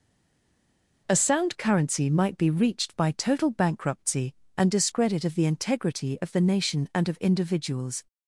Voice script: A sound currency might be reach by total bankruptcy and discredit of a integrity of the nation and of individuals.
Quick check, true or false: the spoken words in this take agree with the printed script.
false